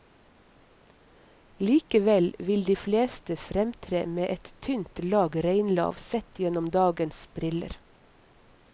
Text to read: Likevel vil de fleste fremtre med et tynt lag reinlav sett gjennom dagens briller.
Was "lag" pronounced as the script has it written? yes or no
yes